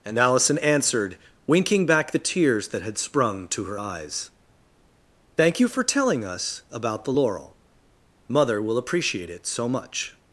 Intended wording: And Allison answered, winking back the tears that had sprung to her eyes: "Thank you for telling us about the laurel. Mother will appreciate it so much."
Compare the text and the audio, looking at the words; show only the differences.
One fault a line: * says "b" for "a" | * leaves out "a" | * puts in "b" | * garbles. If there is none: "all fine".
all fine